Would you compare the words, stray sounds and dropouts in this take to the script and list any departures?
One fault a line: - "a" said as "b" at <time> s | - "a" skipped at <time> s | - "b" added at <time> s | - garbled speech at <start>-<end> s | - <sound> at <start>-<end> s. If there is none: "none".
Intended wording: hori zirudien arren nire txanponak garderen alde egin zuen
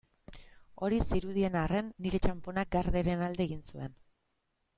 none